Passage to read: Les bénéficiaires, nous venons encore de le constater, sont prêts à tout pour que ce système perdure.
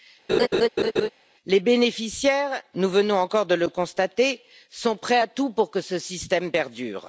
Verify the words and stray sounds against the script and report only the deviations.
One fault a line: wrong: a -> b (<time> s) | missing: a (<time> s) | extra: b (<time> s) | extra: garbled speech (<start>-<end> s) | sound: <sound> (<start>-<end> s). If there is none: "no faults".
sound: laugh (0.3-1.1 s)